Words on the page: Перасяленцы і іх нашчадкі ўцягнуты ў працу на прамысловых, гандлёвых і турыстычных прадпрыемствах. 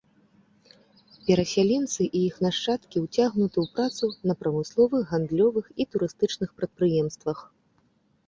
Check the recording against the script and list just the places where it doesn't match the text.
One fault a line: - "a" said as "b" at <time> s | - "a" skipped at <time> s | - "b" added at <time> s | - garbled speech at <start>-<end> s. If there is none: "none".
none